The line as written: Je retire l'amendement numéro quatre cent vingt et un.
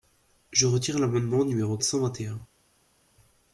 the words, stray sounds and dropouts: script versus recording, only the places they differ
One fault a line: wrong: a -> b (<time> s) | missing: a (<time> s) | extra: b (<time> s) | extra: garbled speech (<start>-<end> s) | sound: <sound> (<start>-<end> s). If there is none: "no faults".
missing: quatre (1.8 s)